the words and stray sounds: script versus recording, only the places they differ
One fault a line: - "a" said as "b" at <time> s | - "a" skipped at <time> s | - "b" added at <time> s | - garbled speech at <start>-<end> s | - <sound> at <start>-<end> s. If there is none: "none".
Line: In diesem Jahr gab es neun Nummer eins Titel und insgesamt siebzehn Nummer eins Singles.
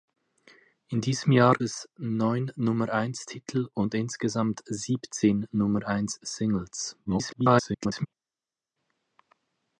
- "gab" skipped at 1.5 s
- garbled speech at 7.0-8.1 s